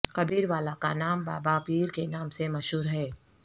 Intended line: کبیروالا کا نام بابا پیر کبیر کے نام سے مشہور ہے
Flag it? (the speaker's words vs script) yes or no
yes